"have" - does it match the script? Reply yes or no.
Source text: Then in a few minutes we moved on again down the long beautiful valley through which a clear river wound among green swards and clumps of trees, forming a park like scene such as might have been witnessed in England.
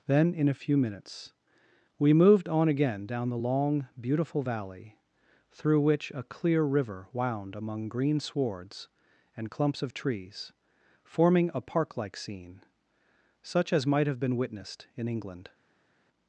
yes